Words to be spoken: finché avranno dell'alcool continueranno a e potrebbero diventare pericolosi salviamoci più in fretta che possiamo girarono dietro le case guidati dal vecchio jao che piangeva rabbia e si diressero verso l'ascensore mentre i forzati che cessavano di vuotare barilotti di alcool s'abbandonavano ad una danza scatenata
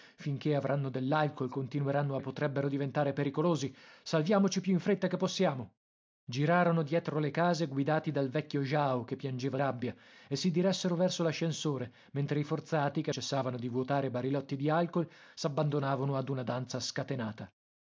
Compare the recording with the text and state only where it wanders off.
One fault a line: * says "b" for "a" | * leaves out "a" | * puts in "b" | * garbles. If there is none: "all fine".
all fine